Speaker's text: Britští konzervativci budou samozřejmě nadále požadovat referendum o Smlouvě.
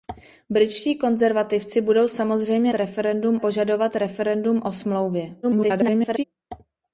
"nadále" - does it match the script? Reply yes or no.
no